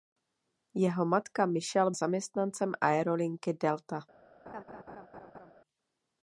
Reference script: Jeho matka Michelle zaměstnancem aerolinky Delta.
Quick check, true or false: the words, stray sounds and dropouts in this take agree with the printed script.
false